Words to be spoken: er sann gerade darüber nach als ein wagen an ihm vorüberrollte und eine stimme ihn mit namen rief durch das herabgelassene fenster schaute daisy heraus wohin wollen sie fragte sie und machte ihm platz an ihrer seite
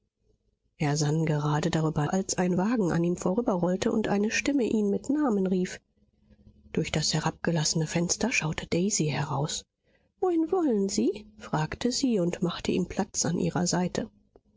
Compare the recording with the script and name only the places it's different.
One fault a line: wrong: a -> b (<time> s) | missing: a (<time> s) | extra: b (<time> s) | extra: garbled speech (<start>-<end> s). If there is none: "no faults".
missing: nach (2.1 s)